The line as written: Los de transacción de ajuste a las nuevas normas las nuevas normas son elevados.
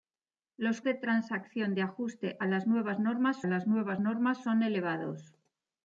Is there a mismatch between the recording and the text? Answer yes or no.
no